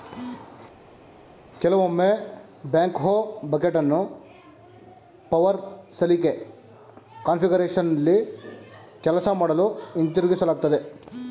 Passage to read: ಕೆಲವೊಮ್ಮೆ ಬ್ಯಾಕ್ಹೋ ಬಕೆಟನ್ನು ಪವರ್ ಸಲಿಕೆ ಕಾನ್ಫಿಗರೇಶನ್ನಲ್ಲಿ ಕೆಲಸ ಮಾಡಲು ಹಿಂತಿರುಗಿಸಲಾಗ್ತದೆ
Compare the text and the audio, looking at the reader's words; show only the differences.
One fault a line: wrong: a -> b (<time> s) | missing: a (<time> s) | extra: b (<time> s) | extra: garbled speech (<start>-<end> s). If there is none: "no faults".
no faults